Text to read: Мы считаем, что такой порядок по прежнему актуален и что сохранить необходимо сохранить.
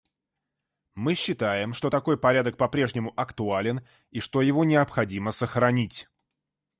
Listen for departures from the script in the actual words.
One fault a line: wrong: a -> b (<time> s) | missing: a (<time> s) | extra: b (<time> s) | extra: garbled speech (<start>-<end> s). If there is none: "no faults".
wrong: сохранить -> его (4.4 s)